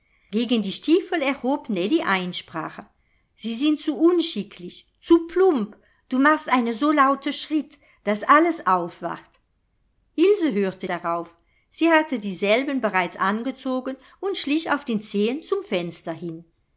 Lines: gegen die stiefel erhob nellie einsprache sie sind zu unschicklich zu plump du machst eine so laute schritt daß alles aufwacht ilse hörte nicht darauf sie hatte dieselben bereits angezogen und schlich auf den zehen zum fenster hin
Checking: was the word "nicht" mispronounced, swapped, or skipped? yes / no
yes